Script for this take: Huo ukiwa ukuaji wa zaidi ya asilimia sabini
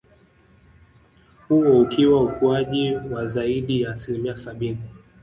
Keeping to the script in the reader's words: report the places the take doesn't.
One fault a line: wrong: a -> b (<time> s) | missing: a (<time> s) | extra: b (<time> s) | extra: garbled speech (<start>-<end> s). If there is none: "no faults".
no faults